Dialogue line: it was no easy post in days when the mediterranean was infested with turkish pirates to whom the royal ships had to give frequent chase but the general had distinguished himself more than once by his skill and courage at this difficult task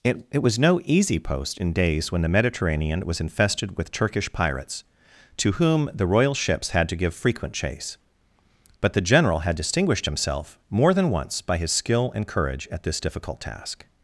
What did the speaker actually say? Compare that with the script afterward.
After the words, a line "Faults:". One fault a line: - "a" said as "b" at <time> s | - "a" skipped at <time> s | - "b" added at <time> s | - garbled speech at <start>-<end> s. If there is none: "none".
it it was no easy post in days when the mediterranean was infested with turkish pirates to whom the royal ships had to give frequent chase but the general had distinguished himself more than once by his skill and courage at this difficult task
Faults:
- "it" added at 0.3 s